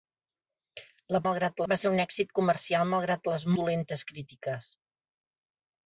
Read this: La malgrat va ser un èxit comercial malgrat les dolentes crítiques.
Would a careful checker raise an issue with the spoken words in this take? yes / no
no